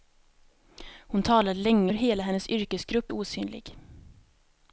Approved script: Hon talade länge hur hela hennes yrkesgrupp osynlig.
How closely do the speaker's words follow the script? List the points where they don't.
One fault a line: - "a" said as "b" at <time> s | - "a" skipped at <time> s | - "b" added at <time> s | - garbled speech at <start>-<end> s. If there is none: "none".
none